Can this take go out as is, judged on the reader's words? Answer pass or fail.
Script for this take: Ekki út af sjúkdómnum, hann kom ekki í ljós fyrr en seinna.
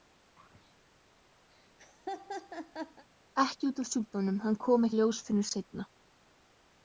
fail